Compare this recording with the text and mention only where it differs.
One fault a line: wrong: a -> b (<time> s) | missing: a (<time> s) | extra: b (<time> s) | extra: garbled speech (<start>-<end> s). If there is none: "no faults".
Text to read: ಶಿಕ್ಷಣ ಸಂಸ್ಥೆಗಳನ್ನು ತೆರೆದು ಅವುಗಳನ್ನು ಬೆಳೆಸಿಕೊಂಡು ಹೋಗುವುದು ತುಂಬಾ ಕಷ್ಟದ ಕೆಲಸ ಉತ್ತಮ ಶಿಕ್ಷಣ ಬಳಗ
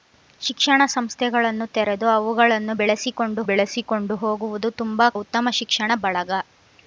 extra: ಬೆಳೆಸಿಕೊಂಡು (3.4 s)
missing: ಕಷ್ಟದ ಕೆಲಸ (5.1 s)